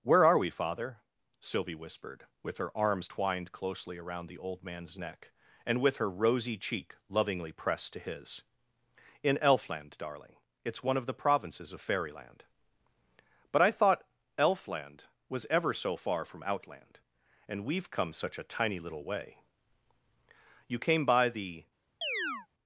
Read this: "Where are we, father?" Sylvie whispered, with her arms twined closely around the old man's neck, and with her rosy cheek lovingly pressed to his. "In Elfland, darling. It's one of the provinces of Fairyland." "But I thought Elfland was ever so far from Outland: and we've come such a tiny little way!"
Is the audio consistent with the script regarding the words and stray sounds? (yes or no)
no